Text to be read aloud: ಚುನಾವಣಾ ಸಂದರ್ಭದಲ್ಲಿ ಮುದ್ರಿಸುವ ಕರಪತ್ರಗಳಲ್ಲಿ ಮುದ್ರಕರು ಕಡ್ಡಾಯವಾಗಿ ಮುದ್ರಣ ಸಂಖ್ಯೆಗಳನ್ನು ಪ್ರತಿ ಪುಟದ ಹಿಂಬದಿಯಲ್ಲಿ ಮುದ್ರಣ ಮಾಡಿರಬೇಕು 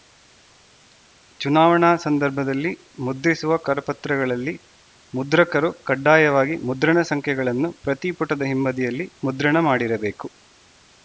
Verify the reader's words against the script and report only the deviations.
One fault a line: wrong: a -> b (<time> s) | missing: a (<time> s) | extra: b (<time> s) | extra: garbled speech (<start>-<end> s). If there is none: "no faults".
no faults